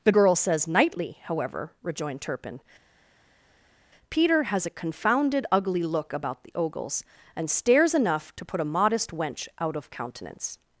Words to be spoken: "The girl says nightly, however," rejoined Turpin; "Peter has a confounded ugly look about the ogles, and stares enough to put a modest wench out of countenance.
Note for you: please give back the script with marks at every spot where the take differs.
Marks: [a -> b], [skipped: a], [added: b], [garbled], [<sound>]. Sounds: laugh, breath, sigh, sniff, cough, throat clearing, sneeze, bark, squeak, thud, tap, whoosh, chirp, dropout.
"The girl says nightly, however," rejoined Turpin; "Peter has a confounded ugly look about the ogles, and stares enough to put a modest wench out of countenance.